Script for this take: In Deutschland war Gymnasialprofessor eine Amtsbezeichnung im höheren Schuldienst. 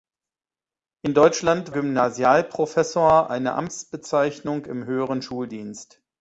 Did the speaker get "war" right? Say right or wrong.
wrong